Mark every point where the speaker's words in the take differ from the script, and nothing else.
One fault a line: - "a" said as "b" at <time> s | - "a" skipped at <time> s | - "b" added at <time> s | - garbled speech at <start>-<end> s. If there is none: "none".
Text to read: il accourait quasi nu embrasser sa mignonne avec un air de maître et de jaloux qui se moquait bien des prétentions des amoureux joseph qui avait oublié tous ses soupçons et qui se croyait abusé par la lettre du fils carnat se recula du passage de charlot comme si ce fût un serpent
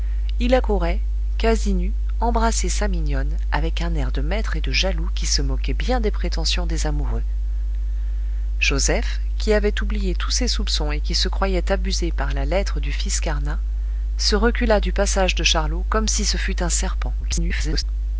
- garbled speech at 17.2-17.8 s